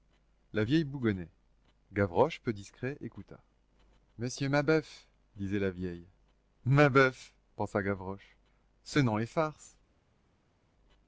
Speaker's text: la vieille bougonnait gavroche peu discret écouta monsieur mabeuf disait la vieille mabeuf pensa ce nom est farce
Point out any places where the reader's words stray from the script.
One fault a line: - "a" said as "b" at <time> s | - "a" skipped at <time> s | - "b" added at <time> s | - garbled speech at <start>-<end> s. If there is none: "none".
- "gavroche" added at 7.8 s